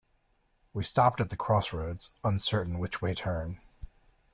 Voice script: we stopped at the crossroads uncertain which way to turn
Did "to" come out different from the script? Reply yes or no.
yes